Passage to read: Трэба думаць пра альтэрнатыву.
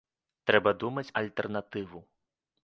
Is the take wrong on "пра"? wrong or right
wrong